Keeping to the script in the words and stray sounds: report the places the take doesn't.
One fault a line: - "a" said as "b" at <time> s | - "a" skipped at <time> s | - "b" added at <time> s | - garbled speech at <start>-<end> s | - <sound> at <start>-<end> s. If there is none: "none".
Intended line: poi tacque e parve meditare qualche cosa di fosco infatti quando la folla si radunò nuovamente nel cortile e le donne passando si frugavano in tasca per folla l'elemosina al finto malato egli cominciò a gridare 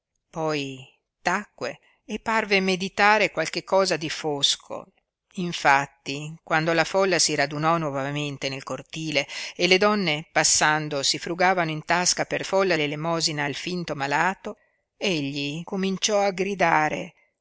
none